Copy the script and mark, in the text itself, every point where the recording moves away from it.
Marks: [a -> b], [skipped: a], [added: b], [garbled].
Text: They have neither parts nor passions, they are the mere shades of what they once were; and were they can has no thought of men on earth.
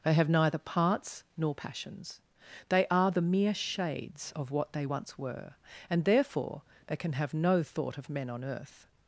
They have neither parts nor passions, they are the mere shades of what they once were; and [were -> therefore] they can [has -> have] no thought of men on earth.